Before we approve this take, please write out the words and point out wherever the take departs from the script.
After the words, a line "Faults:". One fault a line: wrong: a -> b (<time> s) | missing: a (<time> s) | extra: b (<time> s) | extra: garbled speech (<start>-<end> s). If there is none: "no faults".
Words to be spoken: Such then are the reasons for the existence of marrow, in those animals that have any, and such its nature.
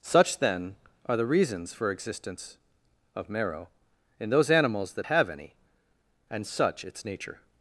Such then are the reasons for existence of marrow, in those animals that have any, and such its nature.
Faults:
missing: the (1.9 s)